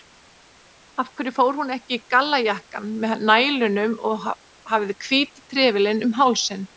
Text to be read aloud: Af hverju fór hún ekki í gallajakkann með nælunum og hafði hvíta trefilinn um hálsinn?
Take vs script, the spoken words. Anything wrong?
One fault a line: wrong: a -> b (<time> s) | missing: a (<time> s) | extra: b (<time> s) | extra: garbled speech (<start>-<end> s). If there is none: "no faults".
no faults